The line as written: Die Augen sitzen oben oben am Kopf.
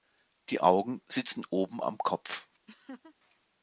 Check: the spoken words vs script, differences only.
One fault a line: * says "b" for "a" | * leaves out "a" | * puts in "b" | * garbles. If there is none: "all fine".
* leaves out "oben"